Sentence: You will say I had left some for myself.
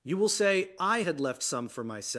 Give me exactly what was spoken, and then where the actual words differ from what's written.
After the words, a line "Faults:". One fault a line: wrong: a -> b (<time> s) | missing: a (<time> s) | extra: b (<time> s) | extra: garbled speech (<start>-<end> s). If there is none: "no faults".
You will say I had left some for myself.
Faults:
no faults